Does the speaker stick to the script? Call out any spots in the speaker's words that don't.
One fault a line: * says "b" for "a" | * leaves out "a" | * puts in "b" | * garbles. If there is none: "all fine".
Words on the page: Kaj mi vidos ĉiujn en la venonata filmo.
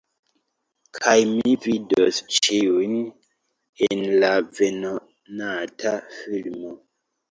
all fine